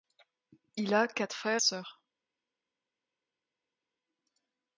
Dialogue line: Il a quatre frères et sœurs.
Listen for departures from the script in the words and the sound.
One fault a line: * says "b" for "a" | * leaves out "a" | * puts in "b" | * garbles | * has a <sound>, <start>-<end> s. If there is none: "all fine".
* leaves out "et"